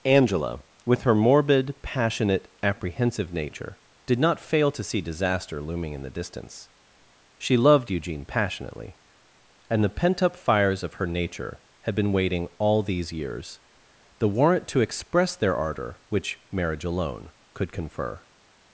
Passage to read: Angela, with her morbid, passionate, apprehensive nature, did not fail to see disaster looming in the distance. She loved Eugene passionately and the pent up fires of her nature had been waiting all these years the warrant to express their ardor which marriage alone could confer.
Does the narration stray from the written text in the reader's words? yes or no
no